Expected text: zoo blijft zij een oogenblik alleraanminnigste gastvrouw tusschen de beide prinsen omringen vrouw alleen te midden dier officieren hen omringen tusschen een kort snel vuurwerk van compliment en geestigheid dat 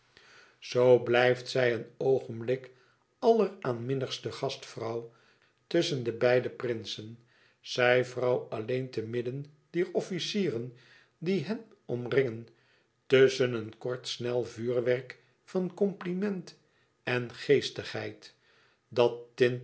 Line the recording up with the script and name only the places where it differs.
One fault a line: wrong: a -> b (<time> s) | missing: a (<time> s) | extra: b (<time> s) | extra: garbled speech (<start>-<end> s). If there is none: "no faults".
wrong: omringen -> zij (7.6 s)
extra: die (11.2 s)